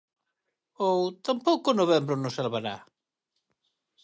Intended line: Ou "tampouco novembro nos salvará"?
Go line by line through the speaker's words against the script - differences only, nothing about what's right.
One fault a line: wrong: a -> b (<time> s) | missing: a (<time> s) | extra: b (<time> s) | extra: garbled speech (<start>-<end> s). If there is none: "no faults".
no faults